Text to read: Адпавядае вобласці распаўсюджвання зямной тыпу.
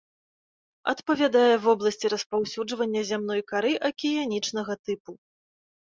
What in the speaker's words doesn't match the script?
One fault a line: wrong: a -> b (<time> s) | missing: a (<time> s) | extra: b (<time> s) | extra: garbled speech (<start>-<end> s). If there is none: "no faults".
extra: кары акіянічнага (3.5 s)